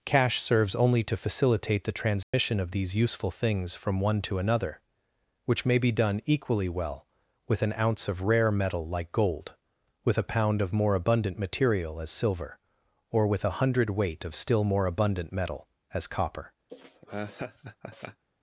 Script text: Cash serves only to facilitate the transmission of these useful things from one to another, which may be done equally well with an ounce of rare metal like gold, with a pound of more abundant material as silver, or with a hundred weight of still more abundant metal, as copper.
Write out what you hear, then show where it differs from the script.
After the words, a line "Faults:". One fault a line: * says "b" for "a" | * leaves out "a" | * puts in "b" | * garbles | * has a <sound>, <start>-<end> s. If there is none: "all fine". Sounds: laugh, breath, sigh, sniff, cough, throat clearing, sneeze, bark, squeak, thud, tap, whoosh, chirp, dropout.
Cash serves only to facilitate the transmission of these useful things from one to another, which may be done equally well with an ounce of rare metal like gold, with a pound of more abundant material as silver, or with a hundred weight of still more abundant metal, as copper.
Faults:
* has a dropout, 2.2-2.3 s
* has a laugh, 16.7-18.2 s